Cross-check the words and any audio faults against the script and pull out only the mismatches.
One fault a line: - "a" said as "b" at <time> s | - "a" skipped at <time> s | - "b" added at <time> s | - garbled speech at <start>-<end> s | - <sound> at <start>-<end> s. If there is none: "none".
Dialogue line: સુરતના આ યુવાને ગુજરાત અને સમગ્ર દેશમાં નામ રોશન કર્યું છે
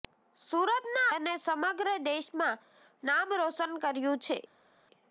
- "આ યુવાને ગુજરાત" skipped at 1.1 s